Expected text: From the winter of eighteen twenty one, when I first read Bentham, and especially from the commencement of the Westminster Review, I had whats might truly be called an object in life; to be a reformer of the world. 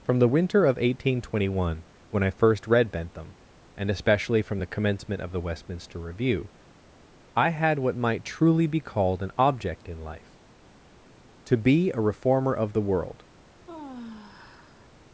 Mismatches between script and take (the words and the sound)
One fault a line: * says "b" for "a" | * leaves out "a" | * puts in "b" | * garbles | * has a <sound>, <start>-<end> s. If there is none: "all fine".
* says "what" for "whats"
* has a sigh, 13.7-14.9 s